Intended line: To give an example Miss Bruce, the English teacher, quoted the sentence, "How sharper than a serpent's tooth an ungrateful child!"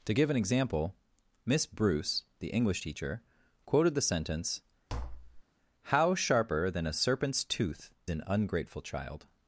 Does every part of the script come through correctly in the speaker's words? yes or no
yes